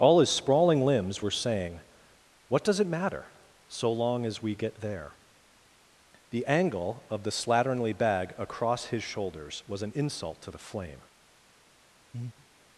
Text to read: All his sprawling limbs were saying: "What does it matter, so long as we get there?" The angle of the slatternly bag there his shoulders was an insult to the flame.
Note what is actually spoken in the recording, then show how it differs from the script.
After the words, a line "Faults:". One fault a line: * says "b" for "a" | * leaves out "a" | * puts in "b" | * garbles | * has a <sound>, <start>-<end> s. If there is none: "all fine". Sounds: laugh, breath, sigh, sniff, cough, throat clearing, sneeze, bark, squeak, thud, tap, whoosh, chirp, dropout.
All his sprawling limbs were saying: "What does it matter, so long as we get there?" The angle of the slatternly bag across his shoulders was an insult to the flame.
Faults:
* says "across" for "there"
* has a breath, 12.1-12.5 s